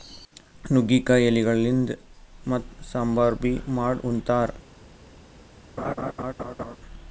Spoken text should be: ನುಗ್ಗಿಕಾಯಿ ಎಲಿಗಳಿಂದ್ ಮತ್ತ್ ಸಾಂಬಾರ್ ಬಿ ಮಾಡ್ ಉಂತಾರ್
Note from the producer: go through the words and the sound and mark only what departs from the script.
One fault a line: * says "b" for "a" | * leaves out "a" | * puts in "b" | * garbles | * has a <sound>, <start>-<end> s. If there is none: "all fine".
* has a laugh, 5.8-6.8 s